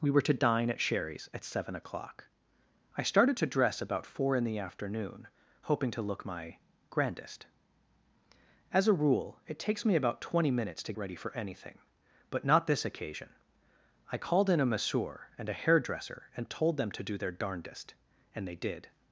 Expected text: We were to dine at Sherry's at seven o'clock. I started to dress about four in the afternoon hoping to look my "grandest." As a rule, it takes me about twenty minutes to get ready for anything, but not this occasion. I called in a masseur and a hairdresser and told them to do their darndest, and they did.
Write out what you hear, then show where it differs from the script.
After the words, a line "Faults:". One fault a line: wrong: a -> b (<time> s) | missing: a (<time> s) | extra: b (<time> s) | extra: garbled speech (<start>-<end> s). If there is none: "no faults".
We were to dine at Sherry's at seven o'clock. I started to dress about four in the afternoon hoping to look my "grandest." As a rule, it takes me about twenty minutes to ready for anything, but not this occasion. I called in a masseur and a hairdresser and told them to do their darndest, and they did.
Faults:
missing: get (10.9 s)